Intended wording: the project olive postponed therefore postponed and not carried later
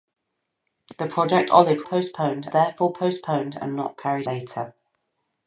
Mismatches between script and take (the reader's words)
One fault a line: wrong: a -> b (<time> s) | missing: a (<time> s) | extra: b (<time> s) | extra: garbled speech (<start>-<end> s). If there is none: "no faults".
no faults